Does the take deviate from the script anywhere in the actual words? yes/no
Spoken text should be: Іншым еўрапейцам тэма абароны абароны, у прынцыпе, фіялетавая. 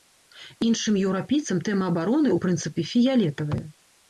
yes